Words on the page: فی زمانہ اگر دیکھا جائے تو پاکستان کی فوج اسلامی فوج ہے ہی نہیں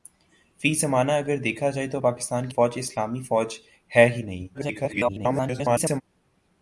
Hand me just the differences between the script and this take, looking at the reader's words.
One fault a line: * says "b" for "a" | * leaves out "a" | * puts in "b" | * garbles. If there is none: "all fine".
* leaves out "کی"
* garbles